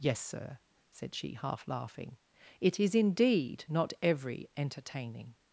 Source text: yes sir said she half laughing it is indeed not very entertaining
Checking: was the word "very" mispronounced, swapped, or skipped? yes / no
yes